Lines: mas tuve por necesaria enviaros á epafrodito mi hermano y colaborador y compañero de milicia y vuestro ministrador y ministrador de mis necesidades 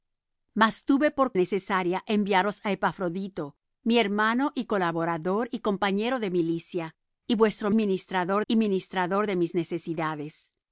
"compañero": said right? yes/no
yes